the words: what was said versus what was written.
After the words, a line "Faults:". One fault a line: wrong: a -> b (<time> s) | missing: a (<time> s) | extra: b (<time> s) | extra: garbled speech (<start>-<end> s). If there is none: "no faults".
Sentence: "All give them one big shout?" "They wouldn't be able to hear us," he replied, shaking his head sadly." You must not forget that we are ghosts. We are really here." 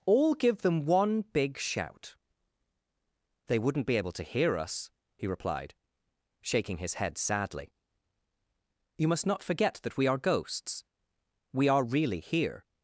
"All give them one big shout?" "They wouldn't be able to hear us," he replied, shaking his head sadly." You must not forget that we are ghosts. We are really here."
Faults:
no faults